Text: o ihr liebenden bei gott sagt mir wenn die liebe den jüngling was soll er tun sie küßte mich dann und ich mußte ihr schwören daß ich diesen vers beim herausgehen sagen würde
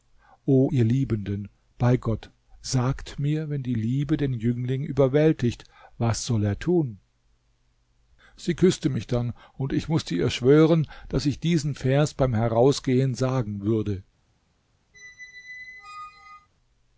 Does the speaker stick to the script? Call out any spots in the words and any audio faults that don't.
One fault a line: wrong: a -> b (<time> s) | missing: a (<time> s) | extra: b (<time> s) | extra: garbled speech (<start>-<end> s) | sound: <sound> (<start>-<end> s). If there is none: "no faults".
extra: überwältigt (4.8 s)
sound: squeak (14.9-16.5 s)